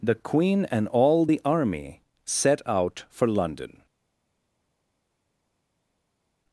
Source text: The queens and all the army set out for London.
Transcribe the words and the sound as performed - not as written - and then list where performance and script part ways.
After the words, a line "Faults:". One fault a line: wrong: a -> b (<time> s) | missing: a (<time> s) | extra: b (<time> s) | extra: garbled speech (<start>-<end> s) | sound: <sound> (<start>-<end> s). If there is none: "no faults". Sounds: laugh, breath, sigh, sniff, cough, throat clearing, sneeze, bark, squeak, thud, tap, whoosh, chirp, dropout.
The queen and all the army set out for London.
Faults:
wrong: queens -> queen (0.1 s)